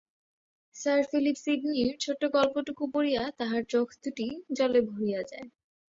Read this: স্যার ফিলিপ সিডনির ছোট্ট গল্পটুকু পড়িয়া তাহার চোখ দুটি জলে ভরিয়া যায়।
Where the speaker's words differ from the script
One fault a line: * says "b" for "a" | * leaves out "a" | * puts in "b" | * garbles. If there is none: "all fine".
all fine